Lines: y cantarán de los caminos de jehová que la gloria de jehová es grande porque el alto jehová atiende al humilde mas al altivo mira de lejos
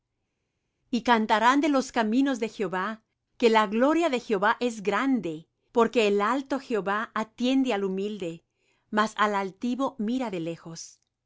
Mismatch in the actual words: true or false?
false